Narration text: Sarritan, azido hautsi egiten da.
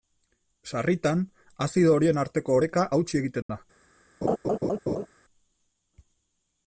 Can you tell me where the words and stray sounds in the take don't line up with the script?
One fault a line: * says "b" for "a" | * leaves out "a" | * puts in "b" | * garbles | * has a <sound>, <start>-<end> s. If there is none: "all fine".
* puts in "horien arteko oreka"
* has a dropout, 3.4-3.5 s
* has a laugh, 4.2-5.1 s